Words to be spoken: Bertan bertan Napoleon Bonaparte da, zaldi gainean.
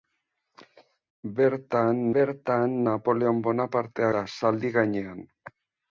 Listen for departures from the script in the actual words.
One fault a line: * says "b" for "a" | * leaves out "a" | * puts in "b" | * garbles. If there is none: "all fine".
all fine